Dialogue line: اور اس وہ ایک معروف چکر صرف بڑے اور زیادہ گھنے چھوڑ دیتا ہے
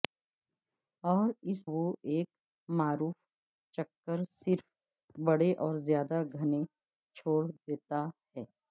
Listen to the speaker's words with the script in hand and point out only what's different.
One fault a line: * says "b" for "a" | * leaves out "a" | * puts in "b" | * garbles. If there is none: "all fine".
all fine